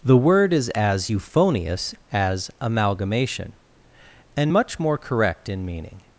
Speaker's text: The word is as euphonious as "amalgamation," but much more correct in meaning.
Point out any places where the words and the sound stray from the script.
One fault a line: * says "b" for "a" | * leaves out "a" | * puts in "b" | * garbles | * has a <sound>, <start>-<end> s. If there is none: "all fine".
* says "and" for "but"